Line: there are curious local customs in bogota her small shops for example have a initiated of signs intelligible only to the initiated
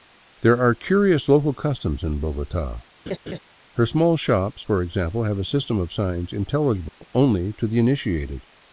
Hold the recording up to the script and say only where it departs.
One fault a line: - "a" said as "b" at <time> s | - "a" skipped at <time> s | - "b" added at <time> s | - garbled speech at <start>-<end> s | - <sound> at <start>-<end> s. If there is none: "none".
- laugh at 3.1-3.4 s
- "initiated" said as "system" at 5.4 s
- dropout at 6.9-7.0 s